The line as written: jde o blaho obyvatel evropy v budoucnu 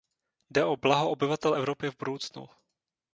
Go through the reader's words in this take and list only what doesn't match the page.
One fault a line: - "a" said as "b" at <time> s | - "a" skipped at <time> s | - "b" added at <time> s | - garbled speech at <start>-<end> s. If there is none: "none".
none